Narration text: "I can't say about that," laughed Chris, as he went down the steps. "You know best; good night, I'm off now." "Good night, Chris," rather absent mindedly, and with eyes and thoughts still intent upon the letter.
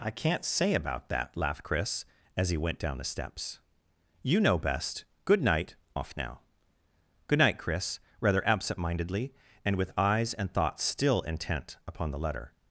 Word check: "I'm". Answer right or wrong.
wrong